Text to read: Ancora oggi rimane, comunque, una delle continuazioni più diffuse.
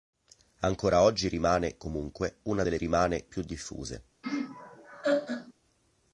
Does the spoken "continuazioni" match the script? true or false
false